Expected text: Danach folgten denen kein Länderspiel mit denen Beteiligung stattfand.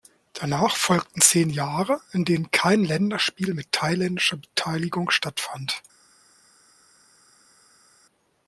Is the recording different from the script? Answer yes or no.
yes